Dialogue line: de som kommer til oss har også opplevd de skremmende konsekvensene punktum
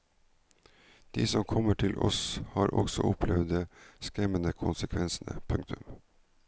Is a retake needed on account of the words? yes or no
no